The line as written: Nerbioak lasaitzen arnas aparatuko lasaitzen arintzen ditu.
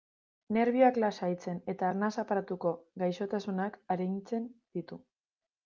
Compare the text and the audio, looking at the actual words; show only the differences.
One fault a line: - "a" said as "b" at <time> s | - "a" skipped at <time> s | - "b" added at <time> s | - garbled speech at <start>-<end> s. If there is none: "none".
- "eta" added at 1.7 s
- "lasaitzen" said as "gaixotasunak" at 3.0 s